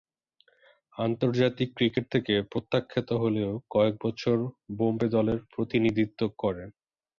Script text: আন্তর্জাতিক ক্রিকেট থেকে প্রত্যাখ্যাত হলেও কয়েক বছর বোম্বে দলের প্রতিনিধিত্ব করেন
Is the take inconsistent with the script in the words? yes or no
no